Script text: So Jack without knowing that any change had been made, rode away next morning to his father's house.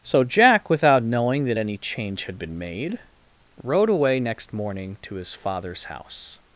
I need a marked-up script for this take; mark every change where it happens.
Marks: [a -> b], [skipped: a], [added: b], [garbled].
So Jack without knowing that any change had been made, rode away next morning to his father's house.